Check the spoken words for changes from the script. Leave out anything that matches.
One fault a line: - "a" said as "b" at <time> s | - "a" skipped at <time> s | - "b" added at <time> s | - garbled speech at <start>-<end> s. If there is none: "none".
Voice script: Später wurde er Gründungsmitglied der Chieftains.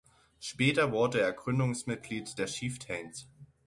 none